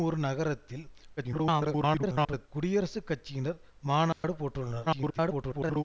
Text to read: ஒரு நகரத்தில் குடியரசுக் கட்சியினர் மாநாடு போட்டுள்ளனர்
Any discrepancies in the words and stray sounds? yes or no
yes